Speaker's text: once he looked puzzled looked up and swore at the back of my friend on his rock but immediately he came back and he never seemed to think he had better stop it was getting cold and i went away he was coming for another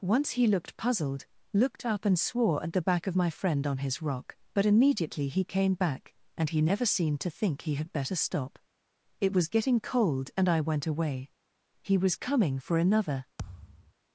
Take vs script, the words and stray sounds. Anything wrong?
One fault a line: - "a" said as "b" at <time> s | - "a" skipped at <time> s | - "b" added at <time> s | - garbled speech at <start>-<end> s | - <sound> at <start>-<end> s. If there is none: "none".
- thud at 13.4-13.9 s